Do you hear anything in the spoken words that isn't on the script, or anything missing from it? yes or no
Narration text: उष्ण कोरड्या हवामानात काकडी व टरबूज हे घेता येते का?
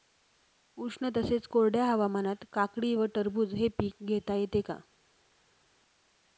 yes